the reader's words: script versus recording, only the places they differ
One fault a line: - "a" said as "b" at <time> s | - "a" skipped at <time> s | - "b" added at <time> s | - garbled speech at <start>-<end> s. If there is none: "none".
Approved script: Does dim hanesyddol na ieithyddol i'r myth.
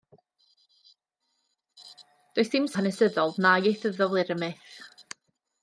none